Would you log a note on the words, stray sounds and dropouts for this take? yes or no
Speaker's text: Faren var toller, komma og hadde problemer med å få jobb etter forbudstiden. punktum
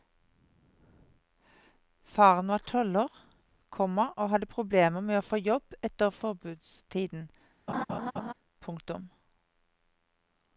yes